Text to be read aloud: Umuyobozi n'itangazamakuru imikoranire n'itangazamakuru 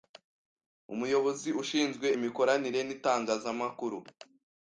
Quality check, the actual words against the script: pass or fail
fail